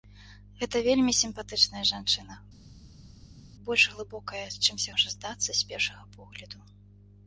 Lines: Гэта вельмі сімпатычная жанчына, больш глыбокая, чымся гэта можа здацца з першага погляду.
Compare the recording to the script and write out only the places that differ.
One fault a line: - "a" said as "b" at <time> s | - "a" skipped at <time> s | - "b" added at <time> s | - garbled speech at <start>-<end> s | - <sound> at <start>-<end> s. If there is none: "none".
- "гэта" skipped at 4.9 s